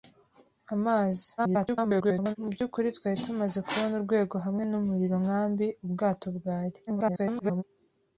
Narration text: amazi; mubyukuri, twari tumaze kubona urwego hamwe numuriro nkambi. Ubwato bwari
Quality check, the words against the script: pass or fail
fail